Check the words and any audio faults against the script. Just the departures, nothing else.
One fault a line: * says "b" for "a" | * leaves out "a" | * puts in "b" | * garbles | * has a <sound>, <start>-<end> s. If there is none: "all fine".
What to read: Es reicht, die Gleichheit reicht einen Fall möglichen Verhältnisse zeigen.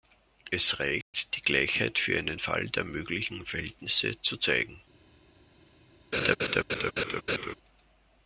* has a dropout, 1.0-1.1 s
* says "für" for "reicht"
* puts in "der"
* puts in "zu"
* has a laugh, 6.1-7.5 s